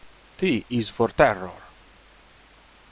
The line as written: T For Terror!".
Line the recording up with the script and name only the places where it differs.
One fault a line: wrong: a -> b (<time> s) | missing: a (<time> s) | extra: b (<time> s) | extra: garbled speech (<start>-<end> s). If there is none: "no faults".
extra: Is (0.7 s)